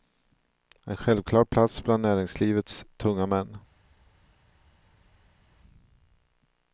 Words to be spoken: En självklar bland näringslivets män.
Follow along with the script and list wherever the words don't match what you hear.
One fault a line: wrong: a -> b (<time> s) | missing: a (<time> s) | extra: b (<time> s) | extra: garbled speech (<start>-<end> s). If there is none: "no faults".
extra: plats (1.4 s)
extra: tunga (3.0 s)